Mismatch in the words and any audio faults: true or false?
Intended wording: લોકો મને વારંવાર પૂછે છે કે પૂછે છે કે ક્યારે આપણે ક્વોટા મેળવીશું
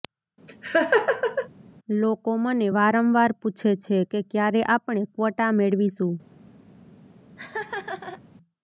true